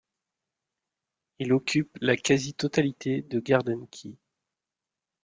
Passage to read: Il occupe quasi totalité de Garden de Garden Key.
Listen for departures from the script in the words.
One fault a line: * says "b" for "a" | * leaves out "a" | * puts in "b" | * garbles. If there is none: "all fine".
* puts in "la"
* leaves out "de Garden"